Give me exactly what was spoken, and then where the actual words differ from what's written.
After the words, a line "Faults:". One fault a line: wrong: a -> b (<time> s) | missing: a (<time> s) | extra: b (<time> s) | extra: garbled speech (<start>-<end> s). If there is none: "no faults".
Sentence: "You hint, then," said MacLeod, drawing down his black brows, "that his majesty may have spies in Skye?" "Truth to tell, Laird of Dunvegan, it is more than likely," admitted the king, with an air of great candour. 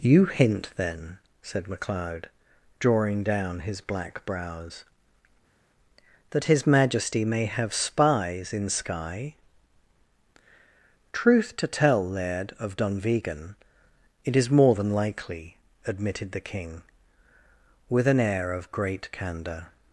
"You hint, then," said MacLeod, drawing down his black brows, "that his majesty may have spies in Skye?" "Truth to tell, Laird of Dunvegan, it is more than likely," admitted the king, with an air of great candour.
Faults:
no faults